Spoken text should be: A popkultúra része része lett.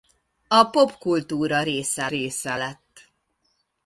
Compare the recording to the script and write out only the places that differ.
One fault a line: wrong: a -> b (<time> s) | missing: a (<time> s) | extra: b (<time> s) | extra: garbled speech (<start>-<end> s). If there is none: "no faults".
no faults